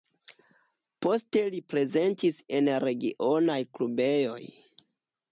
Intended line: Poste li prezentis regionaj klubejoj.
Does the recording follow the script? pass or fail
fail